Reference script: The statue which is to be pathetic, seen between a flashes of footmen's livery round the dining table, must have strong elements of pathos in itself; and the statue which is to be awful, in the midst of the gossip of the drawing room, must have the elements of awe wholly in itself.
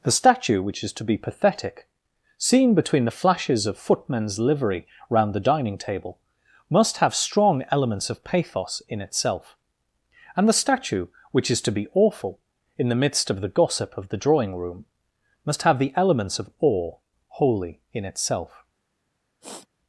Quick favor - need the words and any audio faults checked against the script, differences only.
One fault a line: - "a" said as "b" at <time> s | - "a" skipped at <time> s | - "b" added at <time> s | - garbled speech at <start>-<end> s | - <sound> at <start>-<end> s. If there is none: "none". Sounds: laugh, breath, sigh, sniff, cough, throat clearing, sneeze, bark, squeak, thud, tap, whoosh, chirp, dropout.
- "a" said as "the" at 3.0 s
- sniff at 19.4-19.7 s